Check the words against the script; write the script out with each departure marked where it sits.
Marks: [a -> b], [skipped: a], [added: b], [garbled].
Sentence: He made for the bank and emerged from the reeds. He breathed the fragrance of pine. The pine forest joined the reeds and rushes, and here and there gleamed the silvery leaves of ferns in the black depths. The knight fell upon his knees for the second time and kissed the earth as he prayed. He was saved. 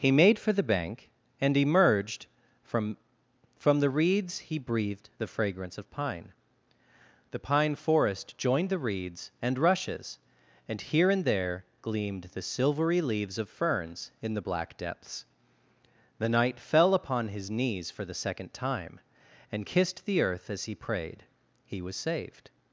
He made for the bank and emerged from [added: from] the reeds. He breathed the fragrance of pine. The pine forest joined the reeds and rushes, and here and there gleamed the silvery leaves of ferns in the black depths. The knight fell upon his knees for the second time and kissed the earth as he prayed. He was saved.